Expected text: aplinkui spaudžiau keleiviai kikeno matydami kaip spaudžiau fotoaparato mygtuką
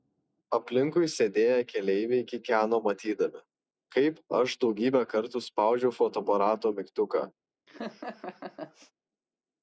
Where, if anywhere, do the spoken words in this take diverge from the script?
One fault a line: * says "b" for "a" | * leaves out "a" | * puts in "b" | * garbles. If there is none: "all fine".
* says "sėdėję" for "spaudžiau"
* puts in "aš daugybę kartų"